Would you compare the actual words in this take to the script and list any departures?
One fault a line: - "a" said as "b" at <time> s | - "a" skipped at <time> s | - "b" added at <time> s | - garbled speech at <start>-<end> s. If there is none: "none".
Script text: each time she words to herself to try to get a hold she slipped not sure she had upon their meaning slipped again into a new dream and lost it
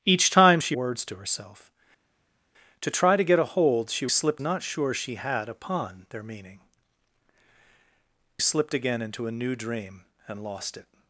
none